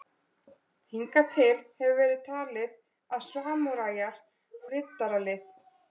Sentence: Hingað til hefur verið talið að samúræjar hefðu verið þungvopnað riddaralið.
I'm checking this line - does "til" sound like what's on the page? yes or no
yes